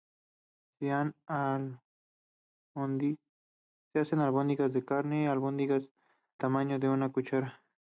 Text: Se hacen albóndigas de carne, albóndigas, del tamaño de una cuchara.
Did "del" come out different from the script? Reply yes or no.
yes